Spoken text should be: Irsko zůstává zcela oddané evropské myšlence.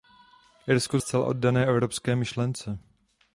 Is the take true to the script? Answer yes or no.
no